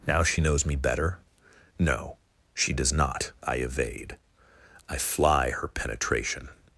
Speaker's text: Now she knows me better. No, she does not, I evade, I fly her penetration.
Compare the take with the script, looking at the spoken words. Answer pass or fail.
pass